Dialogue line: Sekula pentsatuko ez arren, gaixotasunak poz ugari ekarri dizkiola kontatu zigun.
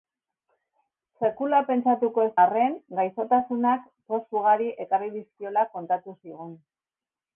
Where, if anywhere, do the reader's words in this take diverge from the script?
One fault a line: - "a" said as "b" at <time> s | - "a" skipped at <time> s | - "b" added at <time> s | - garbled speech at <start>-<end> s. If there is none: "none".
none